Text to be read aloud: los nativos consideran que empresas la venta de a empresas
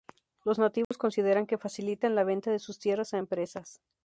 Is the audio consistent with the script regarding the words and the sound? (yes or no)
no